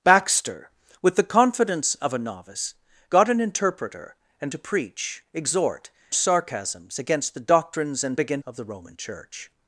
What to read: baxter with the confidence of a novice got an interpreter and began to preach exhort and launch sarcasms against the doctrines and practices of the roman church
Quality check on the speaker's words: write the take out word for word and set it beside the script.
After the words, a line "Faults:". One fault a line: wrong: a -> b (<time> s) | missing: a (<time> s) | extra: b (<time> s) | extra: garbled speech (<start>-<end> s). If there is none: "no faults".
baxter with the confidence of a novice got an interpreter and to preach exhort sarcasms against the doctrines and began of the roman church
Faults:
missing: began (4.5 s)
missing: and launch (5.9 s)
wrong: practices -> began (8.1 s)